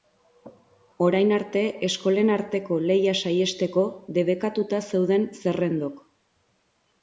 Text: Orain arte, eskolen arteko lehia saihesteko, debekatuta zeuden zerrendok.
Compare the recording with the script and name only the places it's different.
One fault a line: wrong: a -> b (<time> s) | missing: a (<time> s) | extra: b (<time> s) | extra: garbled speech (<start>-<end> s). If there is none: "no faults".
no faults